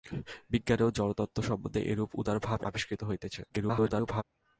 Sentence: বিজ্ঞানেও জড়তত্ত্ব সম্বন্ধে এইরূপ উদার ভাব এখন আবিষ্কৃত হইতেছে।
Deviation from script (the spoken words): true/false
true